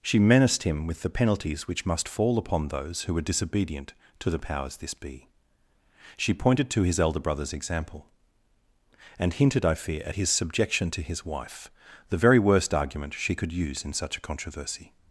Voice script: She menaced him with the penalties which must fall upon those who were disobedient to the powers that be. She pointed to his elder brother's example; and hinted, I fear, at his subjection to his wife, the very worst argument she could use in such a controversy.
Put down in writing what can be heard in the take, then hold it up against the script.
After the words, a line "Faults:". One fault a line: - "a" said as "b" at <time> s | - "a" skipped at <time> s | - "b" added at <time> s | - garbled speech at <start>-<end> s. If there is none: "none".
She menaced him with the penalties which must fall upon those who were disobedient to the powers this be. She pointed to his elder brother's example; and hinted, I fear, at his subjection to his wife, the very worst argument she could use in such a controversy.
Faults:
- "that" said as "this" at 4.8 s